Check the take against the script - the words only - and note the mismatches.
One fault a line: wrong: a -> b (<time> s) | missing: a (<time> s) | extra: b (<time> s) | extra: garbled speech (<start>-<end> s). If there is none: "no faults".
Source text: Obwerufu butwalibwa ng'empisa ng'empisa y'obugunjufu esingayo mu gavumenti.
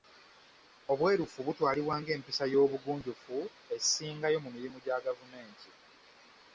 missing: ng'empisa (2.4 s)
extra: mirimu gya (4.5 s)